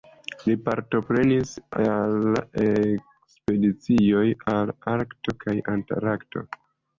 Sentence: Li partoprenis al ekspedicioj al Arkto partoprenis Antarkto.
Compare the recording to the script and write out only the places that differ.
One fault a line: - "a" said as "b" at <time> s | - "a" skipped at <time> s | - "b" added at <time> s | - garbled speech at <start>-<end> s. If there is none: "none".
- "partoprenis" said as "kaj" at 5.4 s